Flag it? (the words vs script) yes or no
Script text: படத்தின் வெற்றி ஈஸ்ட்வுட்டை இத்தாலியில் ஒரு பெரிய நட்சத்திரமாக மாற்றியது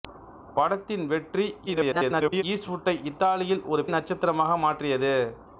yes